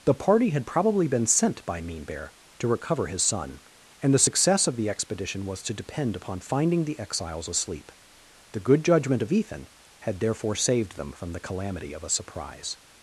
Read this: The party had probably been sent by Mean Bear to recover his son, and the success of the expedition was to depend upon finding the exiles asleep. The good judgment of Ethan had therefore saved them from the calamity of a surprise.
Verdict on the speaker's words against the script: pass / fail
pass